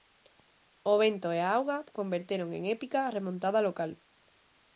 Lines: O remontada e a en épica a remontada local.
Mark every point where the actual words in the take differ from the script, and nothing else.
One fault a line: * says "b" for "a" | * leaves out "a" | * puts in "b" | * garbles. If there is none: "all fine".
* says "vento" for "remontada"
* puts in "auga converteron"